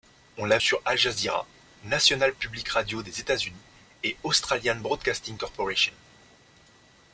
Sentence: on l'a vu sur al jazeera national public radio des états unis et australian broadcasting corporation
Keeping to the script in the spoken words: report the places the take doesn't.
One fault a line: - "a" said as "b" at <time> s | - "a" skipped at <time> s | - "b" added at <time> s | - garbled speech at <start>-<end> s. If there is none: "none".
- "vu" skipped at 0.6 s